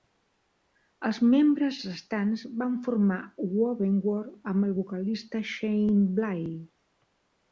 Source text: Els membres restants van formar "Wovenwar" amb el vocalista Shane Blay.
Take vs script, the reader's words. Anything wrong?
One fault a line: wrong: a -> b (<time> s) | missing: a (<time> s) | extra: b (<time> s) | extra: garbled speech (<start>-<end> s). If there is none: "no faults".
no faults